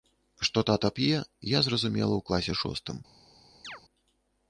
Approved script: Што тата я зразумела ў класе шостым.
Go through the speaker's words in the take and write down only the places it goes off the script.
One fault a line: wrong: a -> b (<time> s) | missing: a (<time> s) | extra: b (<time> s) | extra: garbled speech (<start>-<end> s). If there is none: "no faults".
extra: п'е (1.0 s)